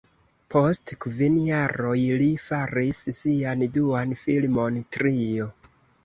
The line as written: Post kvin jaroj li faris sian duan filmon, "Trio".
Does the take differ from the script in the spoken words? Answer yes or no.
no